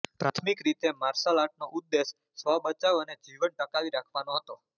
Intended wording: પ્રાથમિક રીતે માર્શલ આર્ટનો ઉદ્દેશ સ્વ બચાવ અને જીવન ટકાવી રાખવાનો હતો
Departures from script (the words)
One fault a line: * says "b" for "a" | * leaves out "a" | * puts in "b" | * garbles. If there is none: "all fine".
all fine